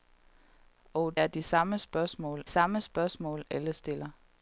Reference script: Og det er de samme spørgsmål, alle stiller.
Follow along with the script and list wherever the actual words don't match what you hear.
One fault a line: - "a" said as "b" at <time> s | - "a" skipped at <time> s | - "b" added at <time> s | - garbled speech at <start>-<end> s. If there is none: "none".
- "det" skipped at 1.2 s
- "samme spørgsmål" added at 2.5 s